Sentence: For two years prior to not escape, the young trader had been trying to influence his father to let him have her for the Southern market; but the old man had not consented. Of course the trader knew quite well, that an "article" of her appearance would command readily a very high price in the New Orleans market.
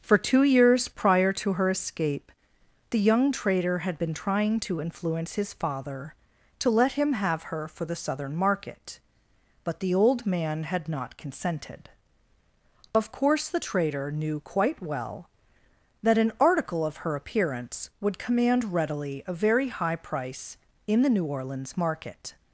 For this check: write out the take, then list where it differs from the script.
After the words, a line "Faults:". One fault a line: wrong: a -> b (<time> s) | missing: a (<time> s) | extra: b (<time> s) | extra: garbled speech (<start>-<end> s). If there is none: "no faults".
For two years prior to her escape, the young trader had been trying to influence his father to let him have her for the Southern market; but the old man had not consented. Of course the trader knew quite well, that an "article" of her appearance would command readily a very high price in the New Orleans market.
Faults:
wrong: not -> her (1.5 s)